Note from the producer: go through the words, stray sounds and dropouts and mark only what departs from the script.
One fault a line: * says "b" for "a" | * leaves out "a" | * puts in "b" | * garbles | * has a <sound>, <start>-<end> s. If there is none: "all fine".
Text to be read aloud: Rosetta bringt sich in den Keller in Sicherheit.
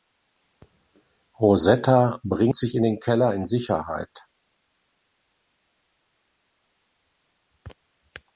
all fine